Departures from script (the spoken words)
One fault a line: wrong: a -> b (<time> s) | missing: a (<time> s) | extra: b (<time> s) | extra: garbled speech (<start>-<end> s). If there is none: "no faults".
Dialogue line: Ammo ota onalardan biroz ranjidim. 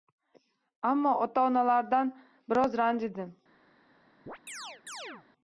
no faults